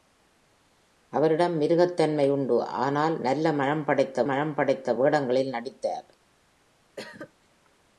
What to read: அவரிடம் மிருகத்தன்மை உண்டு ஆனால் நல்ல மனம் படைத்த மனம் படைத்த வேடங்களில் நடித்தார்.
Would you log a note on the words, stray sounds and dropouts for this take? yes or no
yes